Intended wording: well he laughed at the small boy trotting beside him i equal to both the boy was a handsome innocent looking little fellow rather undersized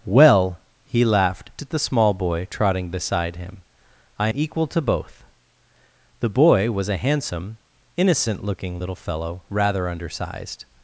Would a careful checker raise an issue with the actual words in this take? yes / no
no